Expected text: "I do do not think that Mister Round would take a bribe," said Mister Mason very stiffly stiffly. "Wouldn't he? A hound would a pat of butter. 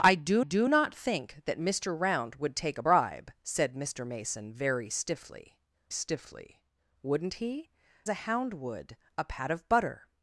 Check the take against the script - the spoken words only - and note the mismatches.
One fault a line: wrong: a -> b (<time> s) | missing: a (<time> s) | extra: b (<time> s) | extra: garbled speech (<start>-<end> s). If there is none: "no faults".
no faults